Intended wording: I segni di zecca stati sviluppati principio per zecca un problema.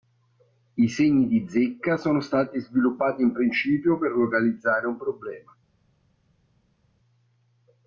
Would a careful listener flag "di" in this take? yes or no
no